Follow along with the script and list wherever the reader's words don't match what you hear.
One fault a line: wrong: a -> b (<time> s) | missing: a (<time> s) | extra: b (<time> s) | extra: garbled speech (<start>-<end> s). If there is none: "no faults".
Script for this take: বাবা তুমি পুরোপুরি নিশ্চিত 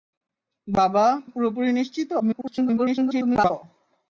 missing: তুমি (1.1 s)
extra: garbled speech (2.2-3.5 s)